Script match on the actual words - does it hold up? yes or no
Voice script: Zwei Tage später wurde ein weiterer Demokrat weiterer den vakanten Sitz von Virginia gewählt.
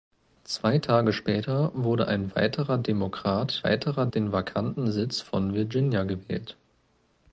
yes